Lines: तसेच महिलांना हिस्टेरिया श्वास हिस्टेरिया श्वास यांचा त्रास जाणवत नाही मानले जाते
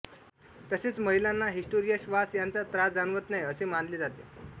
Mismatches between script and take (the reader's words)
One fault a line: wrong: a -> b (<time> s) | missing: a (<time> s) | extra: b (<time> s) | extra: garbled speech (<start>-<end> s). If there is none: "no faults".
missing: हिस्टेरिया श्वास (2.4 s)
extra: असे (3.4 s)